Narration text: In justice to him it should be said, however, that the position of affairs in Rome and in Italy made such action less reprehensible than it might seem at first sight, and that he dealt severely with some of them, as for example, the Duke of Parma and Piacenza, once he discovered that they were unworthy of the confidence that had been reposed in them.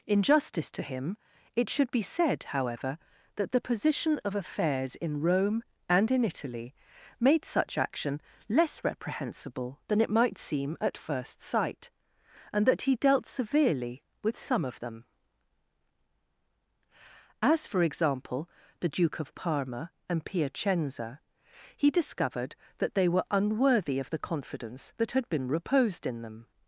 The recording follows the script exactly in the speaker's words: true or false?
false